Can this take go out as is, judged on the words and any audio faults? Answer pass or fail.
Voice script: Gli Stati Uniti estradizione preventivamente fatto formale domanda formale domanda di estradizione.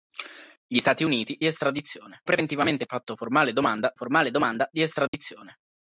fail